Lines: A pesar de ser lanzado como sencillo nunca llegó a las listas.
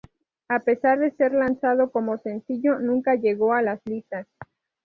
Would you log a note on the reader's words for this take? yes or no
no